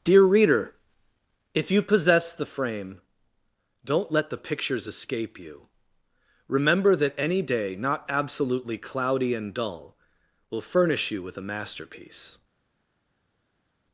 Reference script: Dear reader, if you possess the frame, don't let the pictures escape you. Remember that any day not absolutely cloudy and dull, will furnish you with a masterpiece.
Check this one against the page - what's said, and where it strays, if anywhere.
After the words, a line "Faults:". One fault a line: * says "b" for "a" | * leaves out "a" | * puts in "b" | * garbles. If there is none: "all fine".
Dear reader, if you possess the frame, don't let the pictures escape you. Remember that any day not absolutely cloudy and dull, will furnish you with a masterpiece.
Faults:
all fine